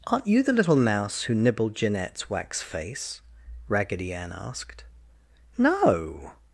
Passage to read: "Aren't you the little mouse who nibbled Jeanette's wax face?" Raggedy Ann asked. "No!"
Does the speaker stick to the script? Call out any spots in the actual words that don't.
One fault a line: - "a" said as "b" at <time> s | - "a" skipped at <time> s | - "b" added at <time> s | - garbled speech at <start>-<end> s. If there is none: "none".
none